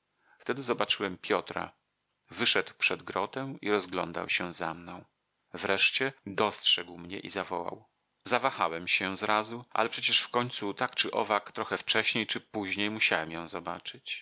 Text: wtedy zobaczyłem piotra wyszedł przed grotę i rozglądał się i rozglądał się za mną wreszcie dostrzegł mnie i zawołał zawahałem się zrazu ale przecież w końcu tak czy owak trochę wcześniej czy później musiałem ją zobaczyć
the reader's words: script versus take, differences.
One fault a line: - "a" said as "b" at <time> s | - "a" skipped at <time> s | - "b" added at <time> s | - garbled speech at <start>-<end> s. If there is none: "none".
- "i rozglądał się" skipped at 4.5 s